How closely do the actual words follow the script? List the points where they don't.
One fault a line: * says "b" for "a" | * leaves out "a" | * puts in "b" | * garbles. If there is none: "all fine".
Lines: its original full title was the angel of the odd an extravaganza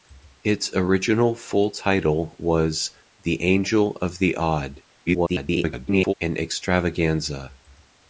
* garbles